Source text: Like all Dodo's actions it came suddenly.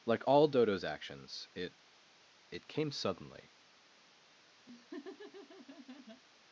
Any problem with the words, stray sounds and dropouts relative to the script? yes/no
yes